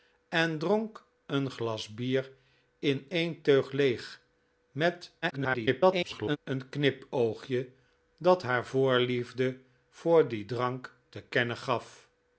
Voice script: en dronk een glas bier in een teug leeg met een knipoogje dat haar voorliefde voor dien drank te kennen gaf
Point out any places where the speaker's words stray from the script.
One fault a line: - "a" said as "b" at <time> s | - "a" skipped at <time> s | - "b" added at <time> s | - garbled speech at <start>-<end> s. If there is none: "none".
- garbled speech at 5.2-6.4 s